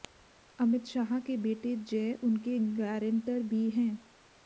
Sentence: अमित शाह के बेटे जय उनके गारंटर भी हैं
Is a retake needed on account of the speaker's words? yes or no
no